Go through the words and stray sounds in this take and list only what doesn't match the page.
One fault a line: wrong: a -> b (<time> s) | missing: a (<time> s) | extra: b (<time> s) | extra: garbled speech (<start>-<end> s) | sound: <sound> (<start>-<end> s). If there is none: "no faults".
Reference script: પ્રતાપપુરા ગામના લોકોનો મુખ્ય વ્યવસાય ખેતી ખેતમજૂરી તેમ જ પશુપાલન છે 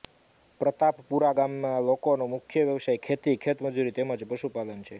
no faults